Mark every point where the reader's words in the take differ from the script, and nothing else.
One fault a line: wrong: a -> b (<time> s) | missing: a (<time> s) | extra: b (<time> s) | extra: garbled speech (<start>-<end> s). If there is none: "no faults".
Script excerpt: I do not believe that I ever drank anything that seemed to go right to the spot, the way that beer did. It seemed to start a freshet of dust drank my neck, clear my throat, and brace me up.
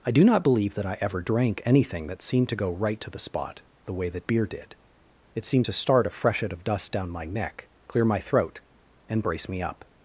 wrong: drank -> down (6.9 s)